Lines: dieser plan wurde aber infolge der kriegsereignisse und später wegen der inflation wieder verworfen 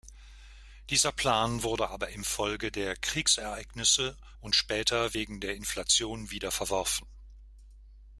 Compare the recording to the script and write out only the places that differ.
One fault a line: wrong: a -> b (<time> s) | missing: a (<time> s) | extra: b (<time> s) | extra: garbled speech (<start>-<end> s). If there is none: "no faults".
no faults